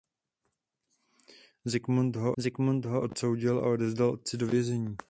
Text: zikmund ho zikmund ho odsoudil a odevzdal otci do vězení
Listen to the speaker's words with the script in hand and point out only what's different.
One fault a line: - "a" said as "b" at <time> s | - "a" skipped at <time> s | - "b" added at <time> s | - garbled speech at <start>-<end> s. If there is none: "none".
none